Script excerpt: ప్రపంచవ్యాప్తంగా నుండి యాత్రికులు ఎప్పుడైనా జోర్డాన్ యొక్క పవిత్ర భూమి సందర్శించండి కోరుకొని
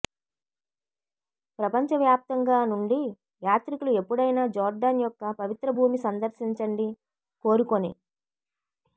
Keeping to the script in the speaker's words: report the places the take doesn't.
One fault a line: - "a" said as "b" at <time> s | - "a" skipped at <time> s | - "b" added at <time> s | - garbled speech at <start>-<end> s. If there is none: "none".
none